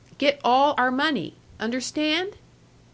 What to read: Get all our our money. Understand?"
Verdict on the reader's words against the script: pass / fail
fail